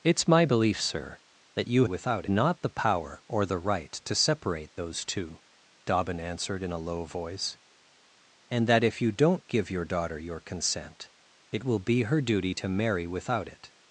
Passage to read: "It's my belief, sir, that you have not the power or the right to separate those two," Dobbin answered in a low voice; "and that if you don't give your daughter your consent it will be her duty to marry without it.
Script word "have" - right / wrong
wrong